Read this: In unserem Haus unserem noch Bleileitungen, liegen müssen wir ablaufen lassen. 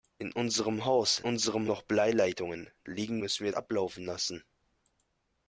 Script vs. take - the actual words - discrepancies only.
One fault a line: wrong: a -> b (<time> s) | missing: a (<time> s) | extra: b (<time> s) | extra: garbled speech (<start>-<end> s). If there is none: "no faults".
no faults